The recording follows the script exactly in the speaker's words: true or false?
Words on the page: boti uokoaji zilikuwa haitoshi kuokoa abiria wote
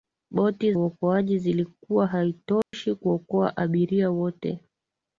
true